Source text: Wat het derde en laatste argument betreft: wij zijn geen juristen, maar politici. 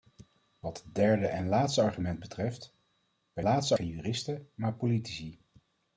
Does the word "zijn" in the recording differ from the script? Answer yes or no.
yes